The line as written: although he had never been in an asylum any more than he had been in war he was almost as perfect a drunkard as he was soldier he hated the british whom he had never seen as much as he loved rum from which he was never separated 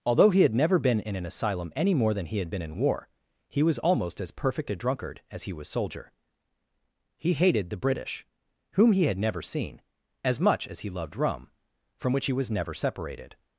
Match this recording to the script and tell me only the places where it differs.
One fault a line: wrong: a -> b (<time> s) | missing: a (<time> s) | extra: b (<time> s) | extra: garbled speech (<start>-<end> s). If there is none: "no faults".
no faults